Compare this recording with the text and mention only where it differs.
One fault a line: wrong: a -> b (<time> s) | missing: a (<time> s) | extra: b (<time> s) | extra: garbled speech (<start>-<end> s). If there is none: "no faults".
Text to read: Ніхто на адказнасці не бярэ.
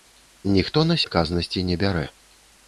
no faults